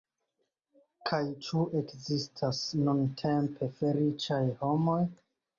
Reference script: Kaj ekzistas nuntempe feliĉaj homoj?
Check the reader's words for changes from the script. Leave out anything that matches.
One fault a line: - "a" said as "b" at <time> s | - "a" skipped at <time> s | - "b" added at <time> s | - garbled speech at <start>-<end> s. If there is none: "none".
- "ĉu" added at 1.5 s